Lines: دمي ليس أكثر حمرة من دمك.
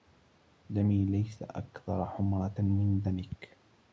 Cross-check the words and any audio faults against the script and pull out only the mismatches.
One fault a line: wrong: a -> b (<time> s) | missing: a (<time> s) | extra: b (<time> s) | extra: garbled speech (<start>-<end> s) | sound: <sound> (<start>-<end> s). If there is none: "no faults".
no faults